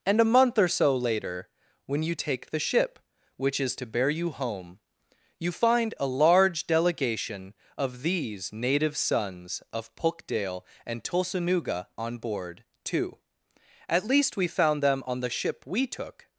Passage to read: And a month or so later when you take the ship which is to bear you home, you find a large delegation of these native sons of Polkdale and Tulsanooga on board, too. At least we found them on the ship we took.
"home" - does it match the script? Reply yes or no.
yes